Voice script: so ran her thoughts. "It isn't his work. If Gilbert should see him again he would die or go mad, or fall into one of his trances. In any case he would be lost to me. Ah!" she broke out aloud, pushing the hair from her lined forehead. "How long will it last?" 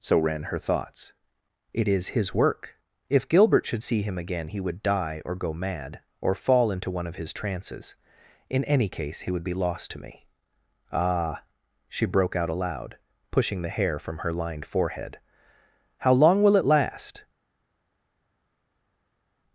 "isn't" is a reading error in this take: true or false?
true